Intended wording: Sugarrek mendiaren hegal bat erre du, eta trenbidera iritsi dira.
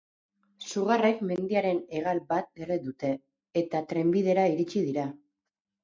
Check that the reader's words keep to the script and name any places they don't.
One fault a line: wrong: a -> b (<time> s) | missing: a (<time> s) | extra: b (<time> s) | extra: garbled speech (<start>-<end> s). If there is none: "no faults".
wrong: du -> dute (2.9 s)